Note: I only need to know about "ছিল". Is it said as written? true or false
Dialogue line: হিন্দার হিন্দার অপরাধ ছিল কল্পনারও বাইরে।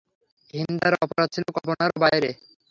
true